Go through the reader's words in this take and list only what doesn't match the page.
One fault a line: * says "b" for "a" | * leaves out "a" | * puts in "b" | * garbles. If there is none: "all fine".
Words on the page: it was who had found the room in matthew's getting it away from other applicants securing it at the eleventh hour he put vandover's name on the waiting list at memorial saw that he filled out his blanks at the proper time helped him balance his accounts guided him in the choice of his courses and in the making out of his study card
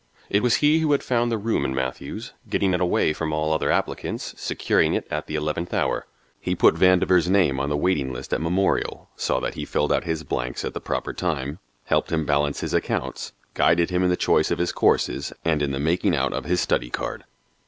* puts in "he"
* puts in "all"